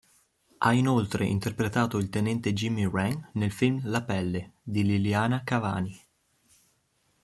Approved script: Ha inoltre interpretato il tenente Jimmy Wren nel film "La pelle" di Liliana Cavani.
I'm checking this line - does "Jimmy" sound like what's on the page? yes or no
yes